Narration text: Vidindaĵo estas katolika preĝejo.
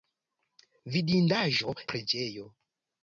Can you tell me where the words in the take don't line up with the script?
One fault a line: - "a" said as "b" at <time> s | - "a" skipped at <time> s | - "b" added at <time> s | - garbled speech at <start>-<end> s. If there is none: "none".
- "estas katolika" skipped at 1.8 s